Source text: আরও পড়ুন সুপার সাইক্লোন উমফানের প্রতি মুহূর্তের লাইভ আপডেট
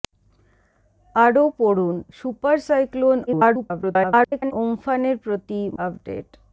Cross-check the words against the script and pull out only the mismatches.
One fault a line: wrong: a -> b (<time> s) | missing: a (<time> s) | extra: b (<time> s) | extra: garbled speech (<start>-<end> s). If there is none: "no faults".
extra: garbled speech (3.3-4.5 s)
missing: মুহূর্তের লাইভ (5.6 s)